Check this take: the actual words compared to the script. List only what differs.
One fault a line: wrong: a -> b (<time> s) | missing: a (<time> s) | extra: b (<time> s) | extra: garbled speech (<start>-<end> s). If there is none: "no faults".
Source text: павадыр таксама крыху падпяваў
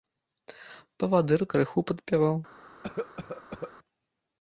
missing: таксама (1.4 s)